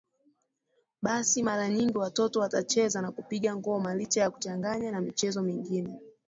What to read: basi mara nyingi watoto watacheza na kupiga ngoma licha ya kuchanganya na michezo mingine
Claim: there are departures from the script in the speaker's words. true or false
false